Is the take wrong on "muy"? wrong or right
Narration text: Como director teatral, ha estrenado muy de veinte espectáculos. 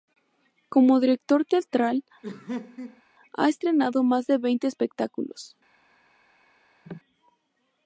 wrong